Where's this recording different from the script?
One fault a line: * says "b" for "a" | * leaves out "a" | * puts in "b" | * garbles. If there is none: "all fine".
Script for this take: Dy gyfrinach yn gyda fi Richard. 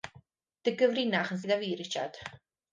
all fine